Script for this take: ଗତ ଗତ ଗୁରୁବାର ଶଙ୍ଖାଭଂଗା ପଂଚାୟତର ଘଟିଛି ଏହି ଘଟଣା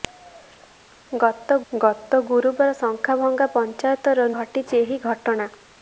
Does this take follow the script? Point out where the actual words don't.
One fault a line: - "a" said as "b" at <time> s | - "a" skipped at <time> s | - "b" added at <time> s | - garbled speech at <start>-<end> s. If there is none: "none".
none